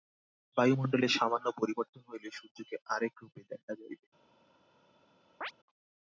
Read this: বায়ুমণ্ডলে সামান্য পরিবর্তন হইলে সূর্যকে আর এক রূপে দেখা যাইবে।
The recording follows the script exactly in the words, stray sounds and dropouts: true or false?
false